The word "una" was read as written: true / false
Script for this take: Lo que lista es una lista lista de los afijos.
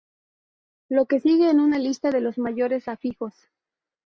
true